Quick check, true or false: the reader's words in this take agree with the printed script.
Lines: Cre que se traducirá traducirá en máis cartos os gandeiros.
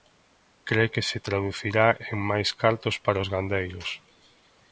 false